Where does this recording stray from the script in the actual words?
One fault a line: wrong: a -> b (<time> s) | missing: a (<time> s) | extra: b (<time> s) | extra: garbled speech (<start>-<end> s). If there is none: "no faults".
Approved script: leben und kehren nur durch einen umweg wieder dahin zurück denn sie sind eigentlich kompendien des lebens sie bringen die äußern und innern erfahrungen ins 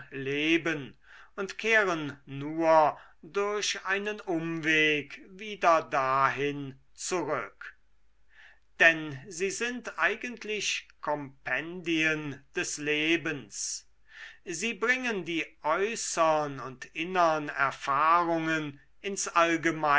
no faults